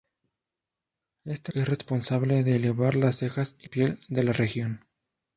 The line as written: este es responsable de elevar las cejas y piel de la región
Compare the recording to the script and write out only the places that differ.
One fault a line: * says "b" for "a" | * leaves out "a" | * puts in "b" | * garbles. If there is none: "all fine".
all fine